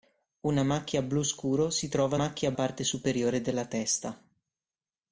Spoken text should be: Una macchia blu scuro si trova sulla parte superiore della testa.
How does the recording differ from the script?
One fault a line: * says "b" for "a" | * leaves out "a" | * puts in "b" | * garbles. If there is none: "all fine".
* says "macchia" for "sulla"